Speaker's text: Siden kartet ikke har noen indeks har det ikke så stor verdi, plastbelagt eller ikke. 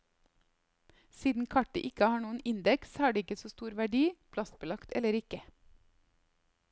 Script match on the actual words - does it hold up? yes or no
yes